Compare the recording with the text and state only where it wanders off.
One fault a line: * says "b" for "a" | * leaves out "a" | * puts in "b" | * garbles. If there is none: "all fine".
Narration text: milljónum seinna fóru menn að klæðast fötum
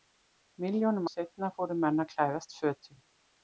all fine